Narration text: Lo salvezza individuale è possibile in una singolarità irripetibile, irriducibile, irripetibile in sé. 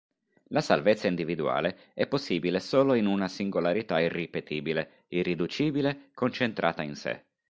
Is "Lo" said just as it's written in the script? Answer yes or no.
no